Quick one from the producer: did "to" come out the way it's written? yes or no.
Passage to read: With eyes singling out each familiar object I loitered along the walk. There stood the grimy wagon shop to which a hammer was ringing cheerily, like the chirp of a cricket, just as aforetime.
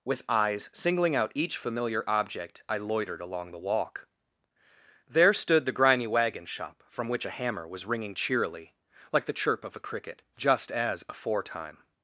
no